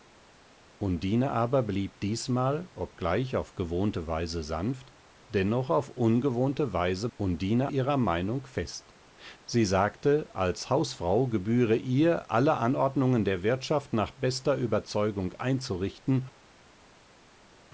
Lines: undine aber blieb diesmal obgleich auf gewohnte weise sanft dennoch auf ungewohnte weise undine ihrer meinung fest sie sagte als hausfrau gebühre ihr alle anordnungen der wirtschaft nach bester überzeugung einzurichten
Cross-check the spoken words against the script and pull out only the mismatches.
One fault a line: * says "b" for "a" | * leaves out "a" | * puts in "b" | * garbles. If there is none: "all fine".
all fine